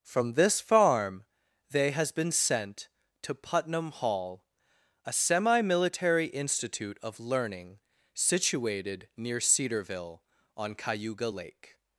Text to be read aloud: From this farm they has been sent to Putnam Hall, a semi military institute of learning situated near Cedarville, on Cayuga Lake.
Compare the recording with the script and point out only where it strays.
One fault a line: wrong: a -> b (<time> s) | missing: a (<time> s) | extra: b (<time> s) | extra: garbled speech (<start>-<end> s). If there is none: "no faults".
no faults